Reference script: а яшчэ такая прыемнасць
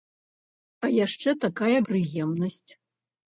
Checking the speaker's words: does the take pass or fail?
pass